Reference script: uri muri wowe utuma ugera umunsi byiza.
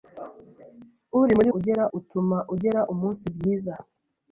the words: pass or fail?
fail